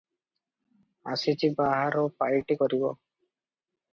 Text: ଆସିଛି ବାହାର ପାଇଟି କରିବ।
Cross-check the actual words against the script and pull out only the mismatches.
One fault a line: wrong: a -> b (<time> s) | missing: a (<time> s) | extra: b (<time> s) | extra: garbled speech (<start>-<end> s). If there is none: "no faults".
no faults